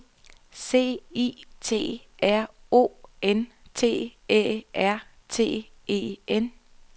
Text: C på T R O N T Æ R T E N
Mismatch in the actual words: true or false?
true